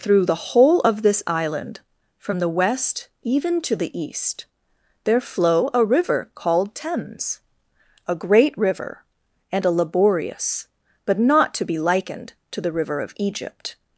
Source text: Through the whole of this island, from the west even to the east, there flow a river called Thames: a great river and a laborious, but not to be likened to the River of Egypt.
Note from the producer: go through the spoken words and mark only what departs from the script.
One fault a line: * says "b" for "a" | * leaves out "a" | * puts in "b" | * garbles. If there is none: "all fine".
all fine